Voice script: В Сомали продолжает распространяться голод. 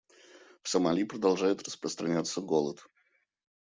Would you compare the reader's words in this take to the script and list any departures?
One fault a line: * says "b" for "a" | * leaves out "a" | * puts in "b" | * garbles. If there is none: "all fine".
all fine